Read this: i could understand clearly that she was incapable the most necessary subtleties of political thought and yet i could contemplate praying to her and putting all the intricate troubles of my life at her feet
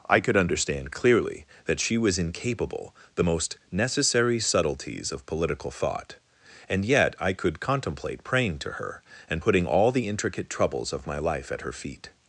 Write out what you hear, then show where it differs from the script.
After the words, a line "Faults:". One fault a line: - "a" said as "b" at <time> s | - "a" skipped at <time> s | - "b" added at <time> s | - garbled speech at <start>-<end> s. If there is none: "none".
i could understand clearly that she was incapable the most necessary subtleties of political thought and yet i could contemplate praying to her and putting all the intricate troubles of my life at her feet
Faults:
none